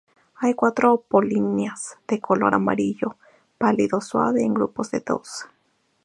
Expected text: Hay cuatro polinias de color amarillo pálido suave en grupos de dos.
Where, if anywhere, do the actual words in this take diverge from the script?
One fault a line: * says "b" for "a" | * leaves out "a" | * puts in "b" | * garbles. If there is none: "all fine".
all fine